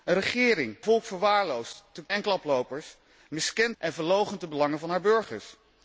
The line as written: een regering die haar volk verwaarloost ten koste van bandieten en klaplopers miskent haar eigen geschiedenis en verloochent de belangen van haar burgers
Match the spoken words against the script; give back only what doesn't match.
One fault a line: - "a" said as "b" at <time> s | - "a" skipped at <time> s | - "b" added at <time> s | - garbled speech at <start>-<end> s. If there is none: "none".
- "die haar" skipped at 0.8 s
- "koste van bandieten" skipped at 2.1 s
- "haar eigen geschiedenis" skipped at 3.8 s